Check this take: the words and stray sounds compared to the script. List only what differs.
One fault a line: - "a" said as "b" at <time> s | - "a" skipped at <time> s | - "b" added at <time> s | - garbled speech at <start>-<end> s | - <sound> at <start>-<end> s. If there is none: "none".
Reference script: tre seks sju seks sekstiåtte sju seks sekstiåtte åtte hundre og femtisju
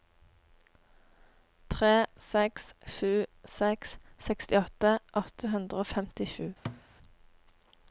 - "sju seks sekstiåtte" skipped at 5.0 s
- thud at 6.6-6.8 s